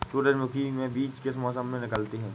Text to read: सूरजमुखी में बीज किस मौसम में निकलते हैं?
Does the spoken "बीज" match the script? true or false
true